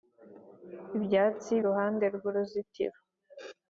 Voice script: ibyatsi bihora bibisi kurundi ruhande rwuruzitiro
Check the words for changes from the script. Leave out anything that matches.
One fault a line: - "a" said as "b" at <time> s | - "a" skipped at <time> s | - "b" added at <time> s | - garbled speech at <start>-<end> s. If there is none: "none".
- "bihora bibisi kurundi" skipped at 1.5 s